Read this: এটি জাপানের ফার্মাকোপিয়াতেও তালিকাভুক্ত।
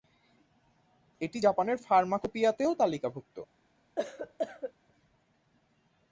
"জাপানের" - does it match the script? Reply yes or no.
yes